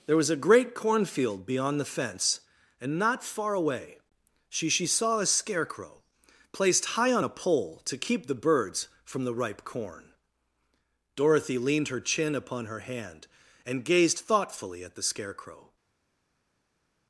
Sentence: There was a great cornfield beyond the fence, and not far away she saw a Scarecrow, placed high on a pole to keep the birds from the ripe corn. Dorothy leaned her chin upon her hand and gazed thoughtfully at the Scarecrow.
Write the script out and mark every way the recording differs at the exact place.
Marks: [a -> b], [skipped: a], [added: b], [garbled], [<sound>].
There was a great cornfield beyond the fence, and not far away she [added: she] saw a Scarecrow, placed high on a pole to keep the birds from the ripe corn. Dorothy leaned her chin upon her hand and gazed thoughtfully at the Scarecrow.